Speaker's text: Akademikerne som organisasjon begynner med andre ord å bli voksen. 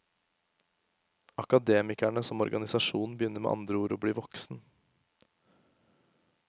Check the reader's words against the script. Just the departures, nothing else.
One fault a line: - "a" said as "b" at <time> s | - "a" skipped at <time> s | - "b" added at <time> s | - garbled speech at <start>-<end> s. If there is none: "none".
none